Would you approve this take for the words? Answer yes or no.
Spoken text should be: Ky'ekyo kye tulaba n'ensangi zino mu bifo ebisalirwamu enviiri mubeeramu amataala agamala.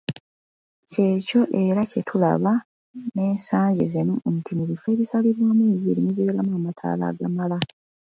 no